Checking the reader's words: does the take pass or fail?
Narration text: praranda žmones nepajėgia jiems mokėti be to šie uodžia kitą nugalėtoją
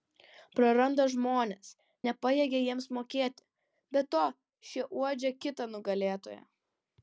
pass